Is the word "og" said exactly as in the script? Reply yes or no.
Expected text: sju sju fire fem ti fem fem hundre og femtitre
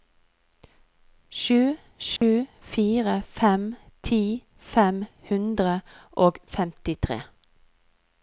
yes